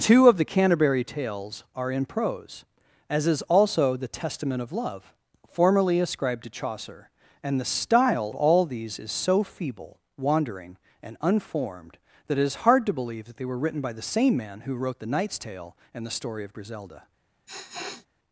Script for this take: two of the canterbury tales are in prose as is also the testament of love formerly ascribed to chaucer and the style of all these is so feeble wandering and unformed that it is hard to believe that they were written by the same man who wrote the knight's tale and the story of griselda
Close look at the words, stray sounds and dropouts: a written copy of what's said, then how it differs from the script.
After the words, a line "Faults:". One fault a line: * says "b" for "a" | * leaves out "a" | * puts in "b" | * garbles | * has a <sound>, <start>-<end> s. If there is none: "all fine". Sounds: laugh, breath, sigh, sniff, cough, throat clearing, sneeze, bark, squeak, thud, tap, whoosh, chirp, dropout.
two of the canterbury tales are in prose as is also the testament of love formerly ascribed to chaucer and the style all these is so feeble wandering and unformed that it is hard to believe that they were written by the same man who wrote the knight's tale and the story of griselda
Faults:
* leaves out "of"
* has a sniff, 17.5-18.1 s